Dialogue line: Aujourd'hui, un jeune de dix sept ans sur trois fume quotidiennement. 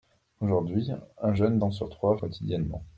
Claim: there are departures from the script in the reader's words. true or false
true